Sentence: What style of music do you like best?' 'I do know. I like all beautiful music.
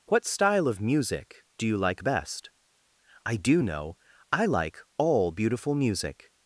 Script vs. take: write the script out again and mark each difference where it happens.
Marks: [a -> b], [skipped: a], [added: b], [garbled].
What style of music do you like best?' 'I do know. I like all beautiful music.